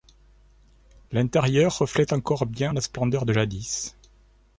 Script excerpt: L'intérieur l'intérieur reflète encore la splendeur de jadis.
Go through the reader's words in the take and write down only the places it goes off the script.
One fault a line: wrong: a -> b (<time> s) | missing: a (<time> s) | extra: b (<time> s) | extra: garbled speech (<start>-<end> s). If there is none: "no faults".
missing: l'intérieur (1.8 s)
extra: bien (2.5 s)